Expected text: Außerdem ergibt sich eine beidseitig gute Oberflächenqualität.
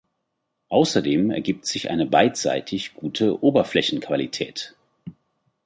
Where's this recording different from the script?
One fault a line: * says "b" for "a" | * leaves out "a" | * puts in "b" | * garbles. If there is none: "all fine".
all fine